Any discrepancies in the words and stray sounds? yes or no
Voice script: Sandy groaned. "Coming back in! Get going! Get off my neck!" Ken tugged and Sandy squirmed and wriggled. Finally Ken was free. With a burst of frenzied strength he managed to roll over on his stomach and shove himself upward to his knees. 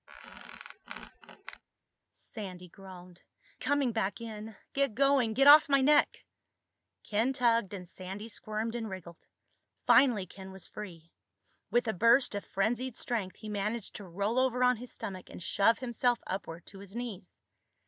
yes